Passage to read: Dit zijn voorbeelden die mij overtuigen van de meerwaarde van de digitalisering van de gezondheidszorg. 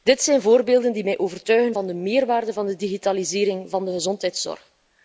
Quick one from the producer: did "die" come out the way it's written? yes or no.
yes